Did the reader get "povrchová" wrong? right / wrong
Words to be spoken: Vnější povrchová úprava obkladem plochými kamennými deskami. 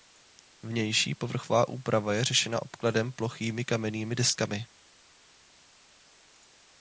right